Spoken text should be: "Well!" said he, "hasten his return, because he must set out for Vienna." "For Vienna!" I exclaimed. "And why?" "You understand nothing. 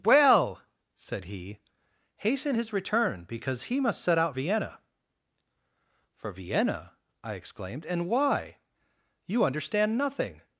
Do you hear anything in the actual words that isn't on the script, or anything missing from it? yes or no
yes